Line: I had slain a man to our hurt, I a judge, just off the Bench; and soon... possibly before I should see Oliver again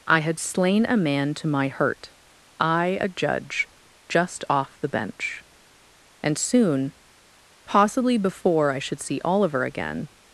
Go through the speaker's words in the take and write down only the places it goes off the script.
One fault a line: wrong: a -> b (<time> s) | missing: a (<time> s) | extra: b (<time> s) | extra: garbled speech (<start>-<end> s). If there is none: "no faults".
wrong: our -> my (1.5 s)